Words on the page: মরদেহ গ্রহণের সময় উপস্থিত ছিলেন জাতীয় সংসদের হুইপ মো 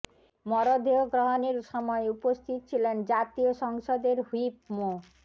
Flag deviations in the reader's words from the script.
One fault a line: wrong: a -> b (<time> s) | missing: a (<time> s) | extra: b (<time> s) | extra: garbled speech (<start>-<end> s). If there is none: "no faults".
no faults